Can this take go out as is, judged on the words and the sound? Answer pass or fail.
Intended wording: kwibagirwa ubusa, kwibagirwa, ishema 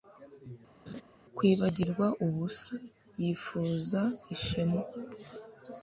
fail